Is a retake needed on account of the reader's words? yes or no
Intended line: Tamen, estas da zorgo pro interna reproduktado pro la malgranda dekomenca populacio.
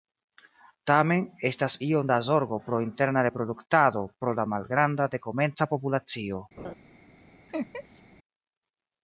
yes